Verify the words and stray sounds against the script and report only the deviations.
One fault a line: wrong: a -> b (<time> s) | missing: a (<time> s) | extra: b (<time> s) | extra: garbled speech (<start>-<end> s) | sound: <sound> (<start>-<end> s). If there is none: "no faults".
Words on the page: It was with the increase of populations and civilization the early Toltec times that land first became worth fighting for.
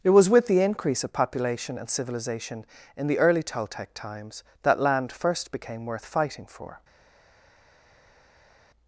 wrong: populations -> population (1.1 s)
extra: in (2.9 s)